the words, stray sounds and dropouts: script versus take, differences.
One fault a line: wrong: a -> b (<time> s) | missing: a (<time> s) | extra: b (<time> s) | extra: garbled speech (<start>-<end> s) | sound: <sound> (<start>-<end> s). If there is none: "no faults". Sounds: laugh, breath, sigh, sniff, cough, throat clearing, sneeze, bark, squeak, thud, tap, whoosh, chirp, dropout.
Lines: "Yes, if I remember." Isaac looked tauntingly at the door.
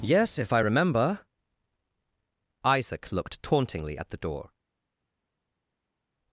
no faults